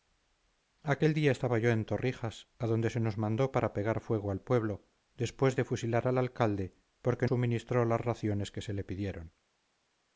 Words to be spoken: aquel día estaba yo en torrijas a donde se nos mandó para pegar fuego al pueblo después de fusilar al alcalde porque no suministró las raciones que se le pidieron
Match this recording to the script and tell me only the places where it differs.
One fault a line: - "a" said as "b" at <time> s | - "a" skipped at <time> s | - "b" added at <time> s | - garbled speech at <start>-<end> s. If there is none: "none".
- "no" skipped at 7.3 s